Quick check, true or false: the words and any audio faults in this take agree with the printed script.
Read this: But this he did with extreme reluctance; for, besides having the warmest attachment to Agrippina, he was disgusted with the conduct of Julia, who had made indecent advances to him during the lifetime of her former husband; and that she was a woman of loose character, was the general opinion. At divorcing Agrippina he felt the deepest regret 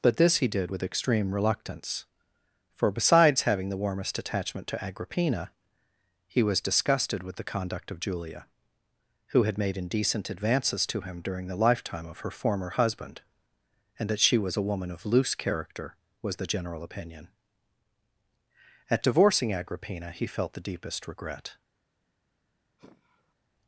false